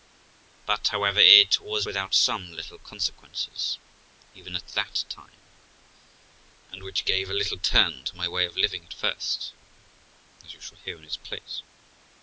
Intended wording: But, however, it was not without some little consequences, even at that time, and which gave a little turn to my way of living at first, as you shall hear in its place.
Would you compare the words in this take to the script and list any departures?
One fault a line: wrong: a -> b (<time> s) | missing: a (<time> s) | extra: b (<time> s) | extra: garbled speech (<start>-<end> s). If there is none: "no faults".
missing: not (1.9 s)